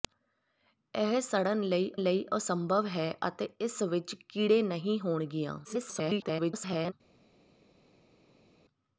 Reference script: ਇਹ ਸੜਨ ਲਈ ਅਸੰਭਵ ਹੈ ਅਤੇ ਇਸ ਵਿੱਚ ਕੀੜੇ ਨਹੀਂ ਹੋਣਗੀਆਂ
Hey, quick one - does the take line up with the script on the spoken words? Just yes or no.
no